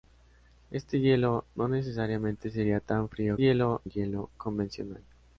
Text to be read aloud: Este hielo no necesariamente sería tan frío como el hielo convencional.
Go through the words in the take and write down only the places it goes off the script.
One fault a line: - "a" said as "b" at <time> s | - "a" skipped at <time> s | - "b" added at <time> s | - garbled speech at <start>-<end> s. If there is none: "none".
- "como" said as "hielo" at 3.4 s